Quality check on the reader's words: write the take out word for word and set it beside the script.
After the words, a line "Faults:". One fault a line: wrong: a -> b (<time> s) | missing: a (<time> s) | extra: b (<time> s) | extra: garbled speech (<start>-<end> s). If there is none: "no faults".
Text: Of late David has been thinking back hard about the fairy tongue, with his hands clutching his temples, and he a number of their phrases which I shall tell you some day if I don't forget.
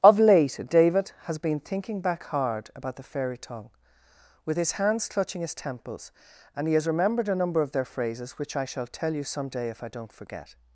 Of late David has been thinking back hard about the fairy tongue, with his hands clutching his temples, and he has remembered a number of their phrases which I shall tell you some day if I don't forget.
Faults:
extra: has remembered (6.7 s)